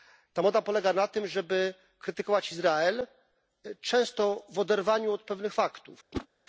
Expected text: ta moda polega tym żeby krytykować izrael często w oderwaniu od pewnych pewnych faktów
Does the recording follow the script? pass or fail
fail